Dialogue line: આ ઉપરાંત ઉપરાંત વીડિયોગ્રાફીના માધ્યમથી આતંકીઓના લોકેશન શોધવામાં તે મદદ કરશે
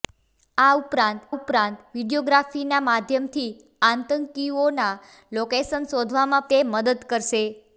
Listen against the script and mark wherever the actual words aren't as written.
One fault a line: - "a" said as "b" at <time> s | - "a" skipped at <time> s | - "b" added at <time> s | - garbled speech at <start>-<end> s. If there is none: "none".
none